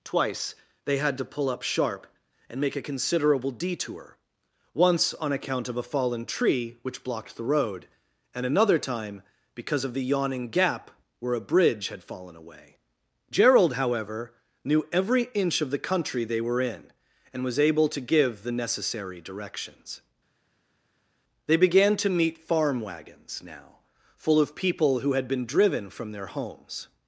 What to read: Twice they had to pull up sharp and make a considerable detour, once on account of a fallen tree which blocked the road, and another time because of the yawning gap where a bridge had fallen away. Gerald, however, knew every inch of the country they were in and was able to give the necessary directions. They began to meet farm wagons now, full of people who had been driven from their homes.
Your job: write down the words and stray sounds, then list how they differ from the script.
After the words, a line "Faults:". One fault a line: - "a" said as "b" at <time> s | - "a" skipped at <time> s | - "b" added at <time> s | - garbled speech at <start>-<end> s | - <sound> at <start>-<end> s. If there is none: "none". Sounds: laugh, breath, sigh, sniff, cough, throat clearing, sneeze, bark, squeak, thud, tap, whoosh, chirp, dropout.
Twice they had to pull up sharp and make a considerable detour, once on account of a fallen tree which blocked the road, and another time because of the yawning gap where a bridge had fallen away. Gerald, however, knew every inch of the country they were in and was able to give the necessary directions. They began to meet farm wagons now, full of people who had been driven from their homes.
Faults:
none